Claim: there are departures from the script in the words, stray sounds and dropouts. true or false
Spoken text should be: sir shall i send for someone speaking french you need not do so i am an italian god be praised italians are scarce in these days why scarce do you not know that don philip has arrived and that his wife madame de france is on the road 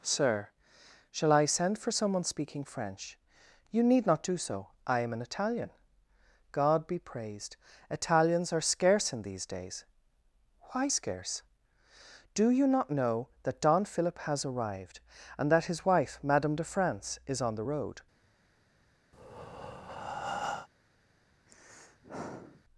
true